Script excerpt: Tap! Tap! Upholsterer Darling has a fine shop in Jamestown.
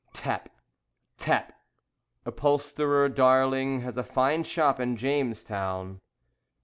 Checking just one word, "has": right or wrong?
right